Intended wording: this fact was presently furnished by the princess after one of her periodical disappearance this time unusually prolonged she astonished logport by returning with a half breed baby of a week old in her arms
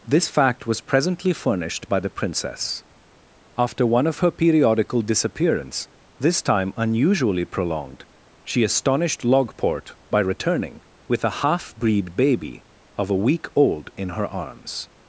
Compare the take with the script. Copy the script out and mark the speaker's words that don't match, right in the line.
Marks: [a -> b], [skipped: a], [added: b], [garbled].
this fact was presently furnished by the princess after one of her periodical disappearance this time unusually prolonged she astonished logport by returning with a half breed baby of a week old in her arms